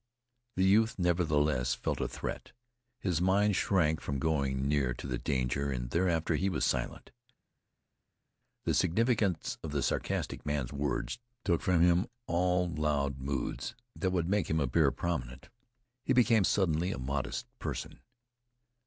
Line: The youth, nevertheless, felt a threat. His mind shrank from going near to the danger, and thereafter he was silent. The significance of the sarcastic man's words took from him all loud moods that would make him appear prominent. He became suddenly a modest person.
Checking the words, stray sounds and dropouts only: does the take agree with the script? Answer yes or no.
yes